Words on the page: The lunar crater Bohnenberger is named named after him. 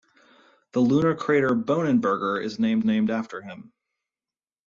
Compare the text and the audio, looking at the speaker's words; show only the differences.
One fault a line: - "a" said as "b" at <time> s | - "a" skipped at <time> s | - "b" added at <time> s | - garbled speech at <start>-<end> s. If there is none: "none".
none